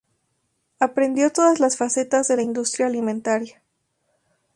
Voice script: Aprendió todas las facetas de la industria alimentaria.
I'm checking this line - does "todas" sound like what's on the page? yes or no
yes